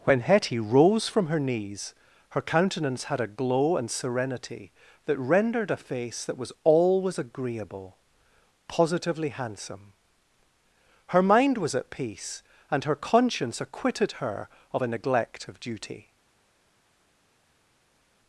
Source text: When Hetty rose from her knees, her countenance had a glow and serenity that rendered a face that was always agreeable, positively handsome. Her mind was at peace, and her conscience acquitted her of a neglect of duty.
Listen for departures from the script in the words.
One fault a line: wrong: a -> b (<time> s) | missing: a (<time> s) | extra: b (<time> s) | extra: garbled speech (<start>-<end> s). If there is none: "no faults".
no faults